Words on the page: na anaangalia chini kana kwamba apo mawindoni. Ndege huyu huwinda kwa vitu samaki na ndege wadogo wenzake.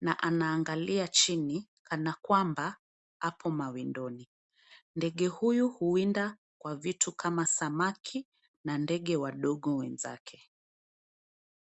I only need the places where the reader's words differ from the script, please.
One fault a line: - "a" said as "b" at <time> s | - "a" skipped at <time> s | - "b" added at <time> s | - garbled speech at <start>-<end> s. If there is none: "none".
- "kama" added at 7.1 s